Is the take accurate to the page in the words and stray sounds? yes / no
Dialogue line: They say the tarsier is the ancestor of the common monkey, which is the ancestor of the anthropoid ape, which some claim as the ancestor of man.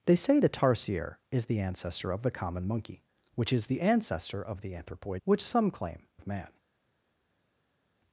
no